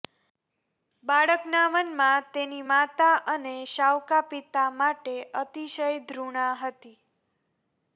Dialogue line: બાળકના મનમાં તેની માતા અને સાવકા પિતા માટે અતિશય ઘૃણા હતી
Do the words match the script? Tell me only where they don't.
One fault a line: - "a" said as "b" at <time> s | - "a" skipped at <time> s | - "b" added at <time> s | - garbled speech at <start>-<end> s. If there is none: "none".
none